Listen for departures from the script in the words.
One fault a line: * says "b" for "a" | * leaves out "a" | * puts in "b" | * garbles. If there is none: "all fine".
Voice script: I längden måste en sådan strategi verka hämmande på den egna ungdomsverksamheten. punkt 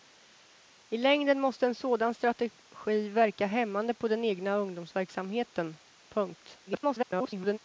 * garbles